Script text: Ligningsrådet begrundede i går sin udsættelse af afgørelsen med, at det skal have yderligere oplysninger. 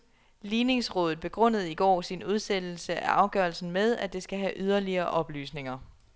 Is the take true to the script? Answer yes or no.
yes